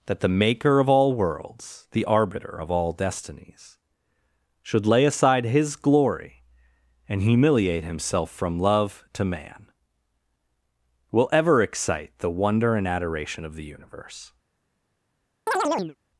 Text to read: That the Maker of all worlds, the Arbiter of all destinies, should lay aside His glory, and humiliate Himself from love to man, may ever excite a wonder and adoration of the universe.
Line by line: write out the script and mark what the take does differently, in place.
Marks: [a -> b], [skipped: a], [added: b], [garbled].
That the Maker of all worlds, the Arbiter of all destinies, should lay aside His glory, and humiliate Himself from love to man, [may -> will] ever excite [a -> the] wonder and adoration of the universe.